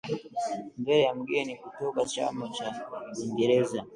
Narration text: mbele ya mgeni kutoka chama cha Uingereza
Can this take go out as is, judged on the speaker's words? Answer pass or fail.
pass